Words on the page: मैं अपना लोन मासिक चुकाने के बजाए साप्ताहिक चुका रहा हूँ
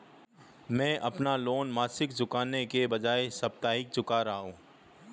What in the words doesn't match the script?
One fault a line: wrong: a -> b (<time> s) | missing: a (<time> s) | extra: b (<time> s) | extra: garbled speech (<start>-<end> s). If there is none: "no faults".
no faults